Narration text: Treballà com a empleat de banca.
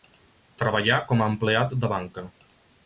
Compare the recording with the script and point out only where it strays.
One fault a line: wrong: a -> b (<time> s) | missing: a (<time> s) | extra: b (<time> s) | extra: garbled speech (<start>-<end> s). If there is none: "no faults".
no faults